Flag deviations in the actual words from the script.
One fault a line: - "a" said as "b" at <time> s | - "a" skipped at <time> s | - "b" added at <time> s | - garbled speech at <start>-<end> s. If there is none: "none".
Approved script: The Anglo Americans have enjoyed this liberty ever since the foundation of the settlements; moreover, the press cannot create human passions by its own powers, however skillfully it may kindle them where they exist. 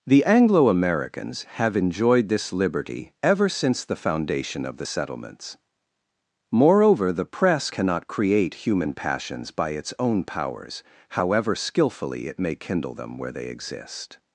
none